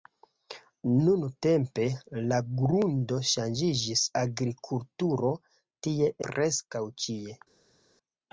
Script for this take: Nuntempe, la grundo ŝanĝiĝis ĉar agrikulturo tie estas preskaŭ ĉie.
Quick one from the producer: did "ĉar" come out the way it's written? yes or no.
no